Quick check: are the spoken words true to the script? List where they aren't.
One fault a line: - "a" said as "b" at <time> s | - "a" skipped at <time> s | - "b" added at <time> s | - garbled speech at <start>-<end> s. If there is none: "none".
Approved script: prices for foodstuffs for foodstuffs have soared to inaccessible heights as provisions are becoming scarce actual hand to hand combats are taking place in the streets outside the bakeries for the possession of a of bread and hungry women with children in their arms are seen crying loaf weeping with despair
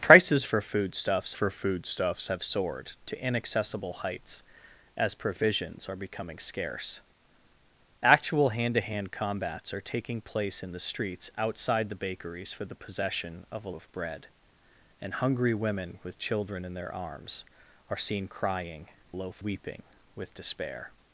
none